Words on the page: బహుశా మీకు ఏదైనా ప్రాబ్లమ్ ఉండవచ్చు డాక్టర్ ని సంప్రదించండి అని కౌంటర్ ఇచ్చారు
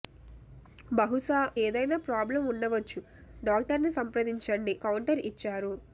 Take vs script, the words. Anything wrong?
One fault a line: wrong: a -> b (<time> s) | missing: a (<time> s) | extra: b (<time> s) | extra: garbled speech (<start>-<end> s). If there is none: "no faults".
missing: మీకు (1.4 s)
missing: అని (4.8 s)